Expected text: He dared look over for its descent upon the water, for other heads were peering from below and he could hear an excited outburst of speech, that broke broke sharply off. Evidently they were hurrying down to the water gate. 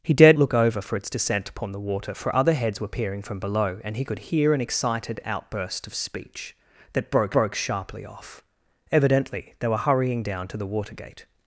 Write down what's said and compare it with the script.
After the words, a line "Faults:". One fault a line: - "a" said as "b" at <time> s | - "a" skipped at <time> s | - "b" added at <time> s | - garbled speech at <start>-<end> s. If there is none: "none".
He dared look over for its descent upon the water, for other heads were peering from below and he could hear an excited outburst of speech, that broke broke sharply off. Evidently they were hurrying down to the water gate.
Faults:
none